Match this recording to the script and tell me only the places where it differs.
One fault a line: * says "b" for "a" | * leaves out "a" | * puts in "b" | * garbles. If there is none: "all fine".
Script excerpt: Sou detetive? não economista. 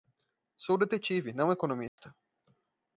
all fine